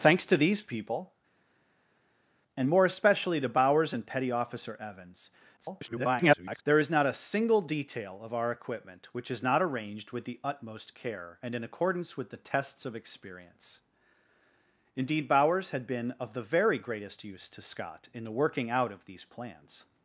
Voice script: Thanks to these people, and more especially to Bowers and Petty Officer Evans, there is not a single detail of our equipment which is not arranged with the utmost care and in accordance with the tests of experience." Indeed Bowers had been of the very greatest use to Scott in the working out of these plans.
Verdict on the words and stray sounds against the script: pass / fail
fail